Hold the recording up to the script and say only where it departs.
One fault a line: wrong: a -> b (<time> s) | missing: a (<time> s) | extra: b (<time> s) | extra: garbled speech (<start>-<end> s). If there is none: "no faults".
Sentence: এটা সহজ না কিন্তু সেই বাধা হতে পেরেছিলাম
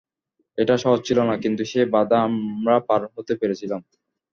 extra: ছিল (1.1 s)
extra: আমরা পার (2.3 s)